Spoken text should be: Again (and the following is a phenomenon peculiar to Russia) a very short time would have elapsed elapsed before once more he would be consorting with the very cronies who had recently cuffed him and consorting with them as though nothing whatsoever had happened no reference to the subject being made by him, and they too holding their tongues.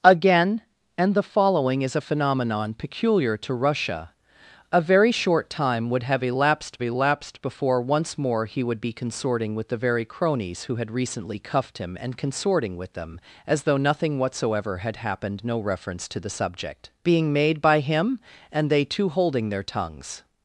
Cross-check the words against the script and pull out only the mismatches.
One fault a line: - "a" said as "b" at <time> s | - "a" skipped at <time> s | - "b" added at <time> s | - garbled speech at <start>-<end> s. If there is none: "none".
none